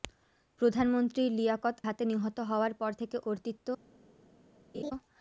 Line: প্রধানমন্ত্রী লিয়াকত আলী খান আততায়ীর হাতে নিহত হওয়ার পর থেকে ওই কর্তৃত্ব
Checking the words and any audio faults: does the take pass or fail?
fail